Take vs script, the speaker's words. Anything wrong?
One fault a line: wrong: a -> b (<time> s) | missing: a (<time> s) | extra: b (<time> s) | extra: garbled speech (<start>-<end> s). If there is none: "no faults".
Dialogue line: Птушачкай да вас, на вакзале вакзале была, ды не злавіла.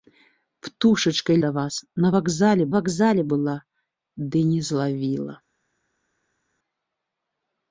no faults